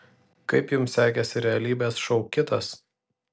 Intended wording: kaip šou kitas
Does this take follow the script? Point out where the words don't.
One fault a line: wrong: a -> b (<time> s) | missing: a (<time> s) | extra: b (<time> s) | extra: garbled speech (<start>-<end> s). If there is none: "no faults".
extra: jums sekėsi realybės (0.8 s)